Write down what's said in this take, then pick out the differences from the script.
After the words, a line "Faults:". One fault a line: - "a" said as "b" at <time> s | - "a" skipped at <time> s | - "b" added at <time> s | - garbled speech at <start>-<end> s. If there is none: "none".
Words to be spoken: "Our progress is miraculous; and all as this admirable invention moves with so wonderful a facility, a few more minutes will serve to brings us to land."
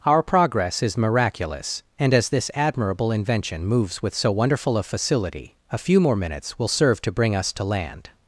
"Our progress is miraculous; and as this admirable invention moves with so wonderful a facility, a few more minutes will serve to bring us to land."
Faults:
- "all" skipped at 2.1 s
- "brings" said as "bring" at 7.1 s